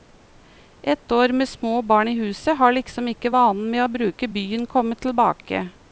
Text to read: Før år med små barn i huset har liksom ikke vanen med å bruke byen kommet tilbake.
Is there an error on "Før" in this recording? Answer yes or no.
yes